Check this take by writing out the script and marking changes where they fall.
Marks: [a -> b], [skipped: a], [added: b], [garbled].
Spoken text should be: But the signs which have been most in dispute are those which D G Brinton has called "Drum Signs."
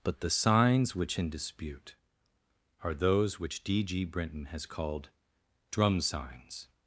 But the signs which [skipped: have been most] in dispute are those which D G Brinton has called "Drum Signs."